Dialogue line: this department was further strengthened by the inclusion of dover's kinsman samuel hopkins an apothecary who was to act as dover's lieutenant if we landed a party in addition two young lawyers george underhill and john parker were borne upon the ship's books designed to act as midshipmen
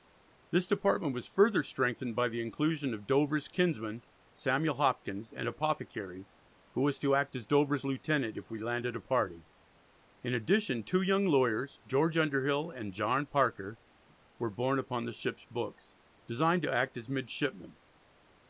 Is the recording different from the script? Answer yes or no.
no